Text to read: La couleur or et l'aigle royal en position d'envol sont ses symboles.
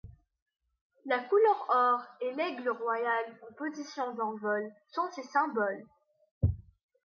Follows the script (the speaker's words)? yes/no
yes